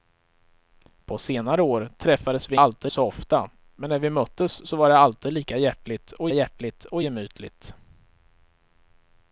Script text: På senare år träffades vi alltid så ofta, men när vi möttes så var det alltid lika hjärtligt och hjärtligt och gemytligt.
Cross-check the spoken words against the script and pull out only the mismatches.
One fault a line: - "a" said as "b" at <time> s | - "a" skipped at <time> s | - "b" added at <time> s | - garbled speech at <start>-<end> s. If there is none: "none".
none